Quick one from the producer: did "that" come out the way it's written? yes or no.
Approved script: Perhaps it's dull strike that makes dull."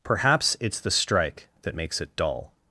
yes